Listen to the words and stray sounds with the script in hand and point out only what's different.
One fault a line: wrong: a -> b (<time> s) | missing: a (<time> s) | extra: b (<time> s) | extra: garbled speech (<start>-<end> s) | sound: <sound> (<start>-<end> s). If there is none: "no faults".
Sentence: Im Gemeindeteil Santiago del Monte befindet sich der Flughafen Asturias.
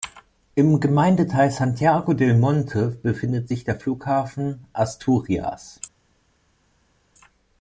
no faults